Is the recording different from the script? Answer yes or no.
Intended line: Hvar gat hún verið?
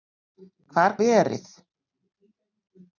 yes